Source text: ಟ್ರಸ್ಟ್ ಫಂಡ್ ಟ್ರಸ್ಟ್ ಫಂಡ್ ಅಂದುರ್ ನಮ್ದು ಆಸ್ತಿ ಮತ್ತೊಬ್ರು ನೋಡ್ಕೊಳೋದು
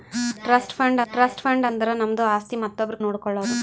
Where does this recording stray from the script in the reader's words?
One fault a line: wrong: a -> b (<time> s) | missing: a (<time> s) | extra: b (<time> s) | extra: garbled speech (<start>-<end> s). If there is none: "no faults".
no faults